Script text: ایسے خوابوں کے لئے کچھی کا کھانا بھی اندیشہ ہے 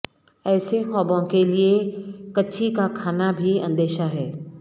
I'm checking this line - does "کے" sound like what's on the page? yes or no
yes